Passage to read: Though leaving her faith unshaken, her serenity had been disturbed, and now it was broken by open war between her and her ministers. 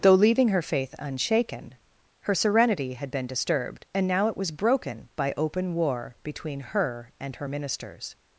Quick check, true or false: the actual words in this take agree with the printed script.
true